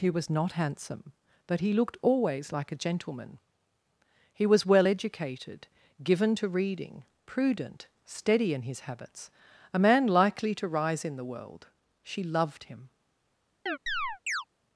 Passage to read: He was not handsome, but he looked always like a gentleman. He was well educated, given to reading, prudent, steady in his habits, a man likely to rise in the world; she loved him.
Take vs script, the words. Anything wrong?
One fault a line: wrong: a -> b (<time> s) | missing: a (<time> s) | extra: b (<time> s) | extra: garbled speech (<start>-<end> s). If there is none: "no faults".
no faults